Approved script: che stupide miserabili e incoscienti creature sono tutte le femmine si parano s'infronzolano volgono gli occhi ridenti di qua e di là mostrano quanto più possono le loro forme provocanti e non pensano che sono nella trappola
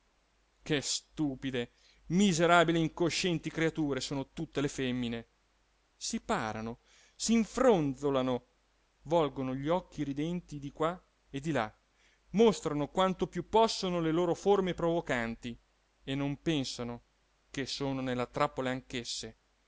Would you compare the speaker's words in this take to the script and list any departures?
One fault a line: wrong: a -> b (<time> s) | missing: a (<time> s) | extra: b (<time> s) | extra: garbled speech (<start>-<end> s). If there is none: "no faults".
no faults